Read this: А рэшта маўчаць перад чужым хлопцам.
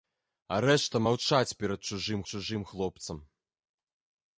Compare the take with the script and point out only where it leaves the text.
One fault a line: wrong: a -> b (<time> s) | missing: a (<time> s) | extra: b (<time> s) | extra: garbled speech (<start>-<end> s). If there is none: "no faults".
extra: чужым (2.3 s)